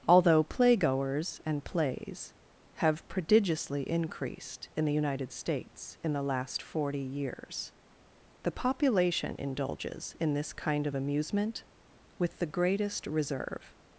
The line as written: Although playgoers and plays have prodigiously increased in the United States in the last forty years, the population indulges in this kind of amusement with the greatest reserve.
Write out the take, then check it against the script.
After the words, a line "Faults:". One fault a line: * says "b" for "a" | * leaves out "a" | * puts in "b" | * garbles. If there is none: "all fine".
Although playgoers and plays have prodigiously increased in the United States in the last forty years, the population indulges in this kind of amusement with the greatest reserve.
Faults:
all fine